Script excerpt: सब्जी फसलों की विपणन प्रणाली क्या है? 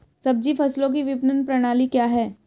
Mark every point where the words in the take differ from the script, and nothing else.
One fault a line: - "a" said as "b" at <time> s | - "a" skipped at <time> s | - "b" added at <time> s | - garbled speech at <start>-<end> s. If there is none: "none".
none